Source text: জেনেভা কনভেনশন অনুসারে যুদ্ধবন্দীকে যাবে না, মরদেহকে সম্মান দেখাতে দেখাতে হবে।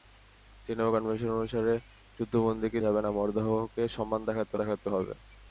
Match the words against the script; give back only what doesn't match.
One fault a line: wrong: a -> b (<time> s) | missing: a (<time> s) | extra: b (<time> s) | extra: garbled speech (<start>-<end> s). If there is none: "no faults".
no faults